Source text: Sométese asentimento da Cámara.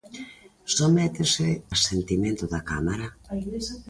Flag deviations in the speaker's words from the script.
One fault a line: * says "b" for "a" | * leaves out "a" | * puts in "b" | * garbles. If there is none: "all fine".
all fine